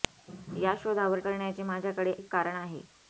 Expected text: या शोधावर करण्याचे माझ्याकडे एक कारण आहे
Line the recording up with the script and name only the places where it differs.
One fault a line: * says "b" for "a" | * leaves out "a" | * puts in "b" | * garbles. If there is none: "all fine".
all fine